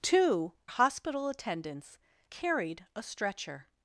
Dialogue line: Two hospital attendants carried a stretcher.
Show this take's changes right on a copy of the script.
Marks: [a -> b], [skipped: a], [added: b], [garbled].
Two hospital attendants carried a stretcher.